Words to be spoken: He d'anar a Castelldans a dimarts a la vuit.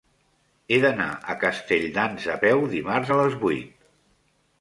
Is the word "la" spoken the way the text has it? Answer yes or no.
no